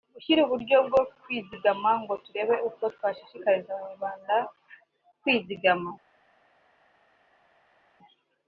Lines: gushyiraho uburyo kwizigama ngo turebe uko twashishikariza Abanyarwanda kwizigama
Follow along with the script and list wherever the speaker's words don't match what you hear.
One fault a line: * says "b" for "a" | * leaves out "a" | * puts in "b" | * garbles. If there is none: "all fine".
* puts in "bwo"